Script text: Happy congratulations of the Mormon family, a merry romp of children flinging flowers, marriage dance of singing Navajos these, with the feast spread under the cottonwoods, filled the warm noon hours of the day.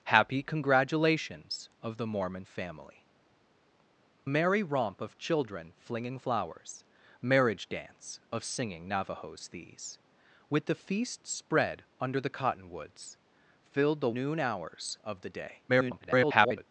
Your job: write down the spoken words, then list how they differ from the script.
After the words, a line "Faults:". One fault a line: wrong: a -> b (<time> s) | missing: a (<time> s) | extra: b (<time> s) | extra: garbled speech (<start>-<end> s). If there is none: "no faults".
Happy congratulations of the Mormon family, merry romp of children flinging flowers, marriage dance of singing Navajos these, with the feast spread under the cottonwoods, filled the noon hours of the day. [garbled]
Faults:
missing: a (3.0 s)
missing: warm (14.1 s)
extra: garbled speech (15.7-16.7 s)